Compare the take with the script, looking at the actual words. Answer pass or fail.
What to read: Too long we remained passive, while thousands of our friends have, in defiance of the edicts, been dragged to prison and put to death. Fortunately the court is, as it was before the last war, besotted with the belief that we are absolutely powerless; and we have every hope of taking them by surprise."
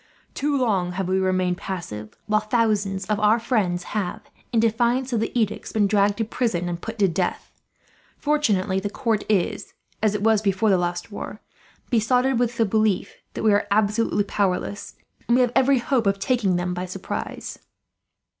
fail